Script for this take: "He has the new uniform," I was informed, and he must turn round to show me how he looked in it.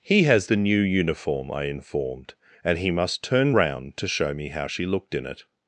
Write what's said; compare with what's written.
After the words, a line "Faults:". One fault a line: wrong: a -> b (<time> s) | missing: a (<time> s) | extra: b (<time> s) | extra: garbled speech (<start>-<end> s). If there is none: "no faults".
"He has the new uniform," I informed, and he must turn round to show me how she looked in it.
Faults:
missing: was (1.6 s)
wrong: he -> she (4.7 s)